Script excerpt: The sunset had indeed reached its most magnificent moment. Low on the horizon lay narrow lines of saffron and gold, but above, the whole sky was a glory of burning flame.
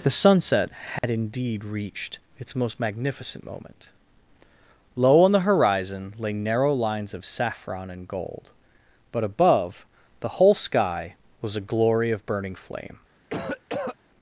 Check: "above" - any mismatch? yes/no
no